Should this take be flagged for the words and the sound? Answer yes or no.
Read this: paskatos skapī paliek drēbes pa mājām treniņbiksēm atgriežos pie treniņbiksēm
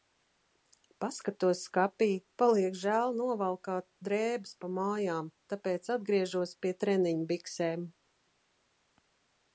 yes